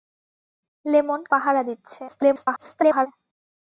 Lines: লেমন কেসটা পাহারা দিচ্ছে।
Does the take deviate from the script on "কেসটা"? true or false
true